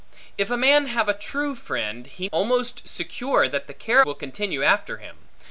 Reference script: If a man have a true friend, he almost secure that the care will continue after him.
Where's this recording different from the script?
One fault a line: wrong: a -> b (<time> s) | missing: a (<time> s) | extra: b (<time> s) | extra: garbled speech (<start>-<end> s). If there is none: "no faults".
no faults